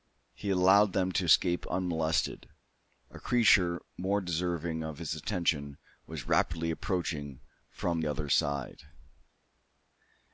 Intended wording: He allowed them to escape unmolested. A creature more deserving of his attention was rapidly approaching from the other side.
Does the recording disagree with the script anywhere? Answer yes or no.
yes